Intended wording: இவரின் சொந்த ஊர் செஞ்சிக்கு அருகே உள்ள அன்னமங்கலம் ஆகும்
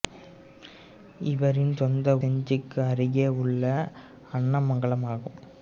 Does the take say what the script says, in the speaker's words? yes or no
no